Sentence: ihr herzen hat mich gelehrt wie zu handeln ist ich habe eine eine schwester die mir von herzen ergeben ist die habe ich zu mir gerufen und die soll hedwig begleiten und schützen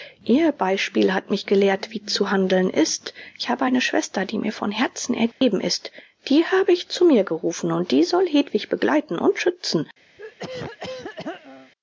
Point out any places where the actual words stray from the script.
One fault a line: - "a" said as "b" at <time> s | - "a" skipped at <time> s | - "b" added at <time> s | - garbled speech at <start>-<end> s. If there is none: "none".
- "herzen" said as "beispiel" at 0.5 s
- "eine" skipped at 3.8 s